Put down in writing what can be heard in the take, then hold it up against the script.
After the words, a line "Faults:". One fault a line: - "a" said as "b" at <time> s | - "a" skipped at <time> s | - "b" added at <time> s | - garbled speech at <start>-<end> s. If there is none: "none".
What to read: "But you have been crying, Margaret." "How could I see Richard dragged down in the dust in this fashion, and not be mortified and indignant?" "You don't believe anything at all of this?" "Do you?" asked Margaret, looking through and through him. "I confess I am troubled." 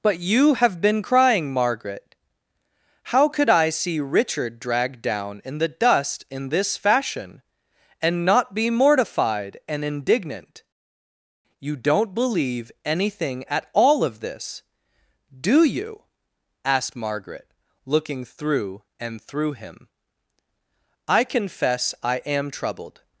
"But you have been crying, Margaret." "How could I see Richard dragged down in the dust in this fashion, and not be mortified and indignant?" "You don't believe anything at all of this?" "Do you?" asked Margaret, looking through and through him. "I confess I am troubled."
Faults:
none